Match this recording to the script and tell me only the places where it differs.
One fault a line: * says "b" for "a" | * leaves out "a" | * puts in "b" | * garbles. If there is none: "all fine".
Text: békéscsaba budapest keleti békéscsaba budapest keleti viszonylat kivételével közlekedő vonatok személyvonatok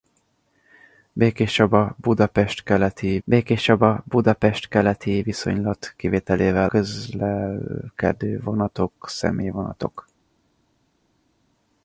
all fine